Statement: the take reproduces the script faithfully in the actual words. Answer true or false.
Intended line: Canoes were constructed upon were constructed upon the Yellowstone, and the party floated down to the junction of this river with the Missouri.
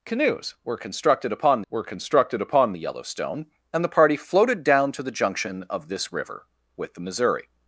true